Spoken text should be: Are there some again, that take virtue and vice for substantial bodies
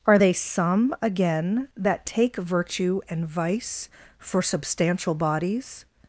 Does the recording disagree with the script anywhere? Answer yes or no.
yes